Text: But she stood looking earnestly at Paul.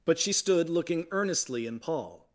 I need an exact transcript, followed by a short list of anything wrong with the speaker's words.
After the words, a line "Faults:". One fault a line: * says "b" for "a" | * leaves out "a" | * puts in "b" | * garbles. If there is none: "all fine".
But she stood looking earnestly in Paul.
Faults:
* says "in" for "at"